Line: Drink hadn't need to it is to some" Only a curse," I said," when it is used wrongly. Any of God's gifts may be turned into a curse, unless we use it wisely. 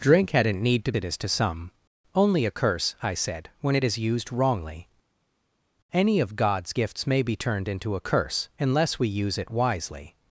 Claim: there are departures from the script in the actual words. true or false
false